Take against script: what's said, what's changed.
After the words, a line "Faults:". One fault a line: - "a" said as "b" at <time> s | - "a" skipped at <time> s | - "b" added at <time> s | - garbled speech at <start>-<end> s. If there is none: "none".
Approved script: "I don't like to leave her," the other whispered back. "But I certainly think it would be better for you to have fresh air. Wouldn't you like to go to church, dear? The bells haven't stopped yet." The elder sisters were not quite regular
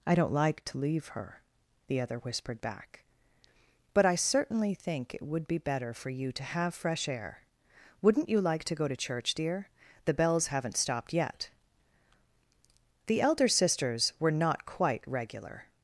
"I don't like to leave her," the other whispered back. "But I certainly think it would be better for you to have fresh air. Wouldn't you like to go to church, dear? The bells haven't stopped yet." The elder sisters were not quite regular
Faults:
none